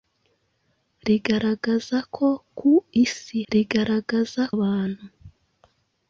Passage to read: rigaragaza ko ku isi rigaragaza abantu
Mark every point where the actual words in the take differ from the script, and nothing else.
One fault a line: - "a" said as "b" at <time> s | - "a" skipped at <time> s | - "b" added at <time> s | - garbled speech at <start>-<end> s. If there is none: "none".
none